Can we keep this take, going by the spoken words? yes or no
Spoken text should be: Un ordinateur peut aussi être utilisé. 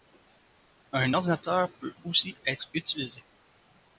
yes